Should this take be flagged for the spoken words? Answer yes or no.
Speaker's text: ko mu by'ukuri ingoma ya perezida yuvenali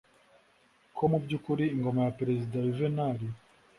no